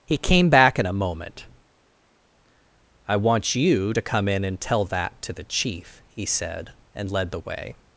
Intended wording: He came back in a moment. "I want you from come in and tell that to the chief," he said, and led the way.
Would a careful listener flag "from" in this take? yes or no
yes